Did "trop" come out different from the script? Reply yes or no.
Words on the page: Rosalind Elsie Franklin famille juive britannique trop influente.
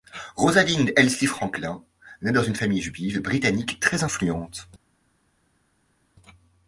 yes